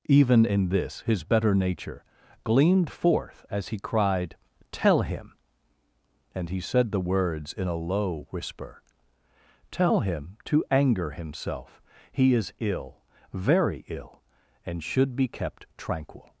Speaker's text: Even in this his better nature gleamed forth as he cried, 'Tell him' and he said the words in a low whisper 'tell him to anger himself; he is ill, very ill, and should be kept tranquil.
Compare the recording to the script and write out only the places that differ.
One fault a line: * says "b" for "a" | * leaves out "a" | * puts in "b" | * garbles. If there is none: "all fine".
all fine